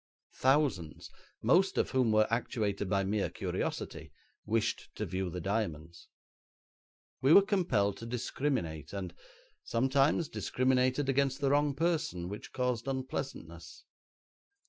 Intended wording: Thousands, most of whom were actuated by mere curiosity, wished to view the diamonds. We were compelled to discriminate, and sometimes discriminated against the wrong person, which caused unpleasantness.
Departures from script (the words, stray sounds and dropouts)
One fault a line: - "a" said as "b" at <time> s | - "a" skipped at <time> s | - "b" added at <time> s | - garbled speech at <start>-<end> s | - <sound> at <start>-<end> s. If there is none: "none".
none